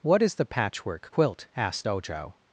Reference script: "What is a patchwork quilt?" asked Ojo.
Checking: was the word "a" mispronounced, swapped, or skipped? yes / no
yes